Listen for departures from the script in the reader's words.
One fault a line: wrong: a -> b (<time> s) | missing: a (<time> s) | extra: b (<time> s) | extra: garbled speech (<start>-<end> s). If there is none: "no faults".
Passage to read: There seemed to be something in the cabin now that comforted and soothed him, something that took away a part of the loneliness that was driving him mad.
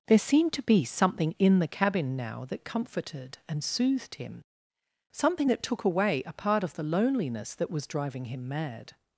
no faults